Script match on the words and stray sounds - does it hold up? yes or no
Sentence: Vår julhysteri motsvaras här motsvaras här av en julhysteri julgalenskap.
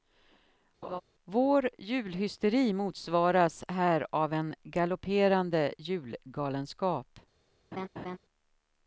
no